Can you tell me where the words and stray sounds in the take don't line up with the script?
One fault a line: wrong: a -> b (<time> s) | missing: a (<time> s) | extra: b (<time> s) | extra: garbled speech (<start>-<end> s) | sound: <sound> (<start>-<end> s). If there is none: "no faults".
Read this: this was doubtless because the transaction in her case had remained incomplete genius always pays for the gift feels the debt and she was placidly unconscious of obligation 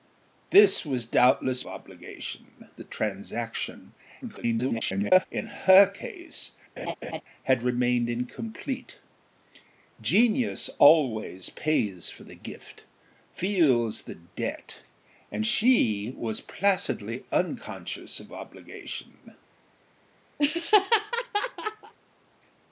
wrong: because -> obligation (1.7 s)
extra: garbled speech (4.2-5.3 s)
sound: laugh (6.8-7.2 s)
sound: laugh (20.4-21.9 s)